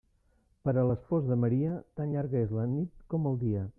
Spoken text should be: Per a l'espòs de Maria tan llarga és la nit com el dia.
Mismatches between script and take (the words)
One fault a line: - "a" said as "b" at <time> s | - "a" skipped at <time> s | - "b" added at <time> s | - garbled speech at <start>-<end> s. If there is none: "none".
none